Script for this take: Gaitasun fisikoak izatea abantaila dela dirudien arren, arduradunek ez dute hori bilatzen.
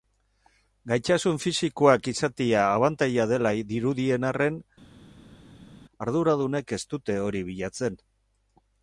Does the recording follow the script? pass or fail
pass